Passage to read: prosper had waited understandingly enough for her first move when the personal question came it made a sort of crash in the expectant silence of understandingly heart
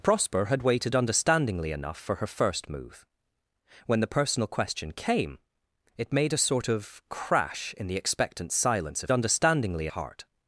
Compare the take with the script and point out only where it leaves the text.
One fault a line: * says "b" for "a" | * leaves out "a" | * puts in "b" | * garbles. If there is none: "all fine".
all fine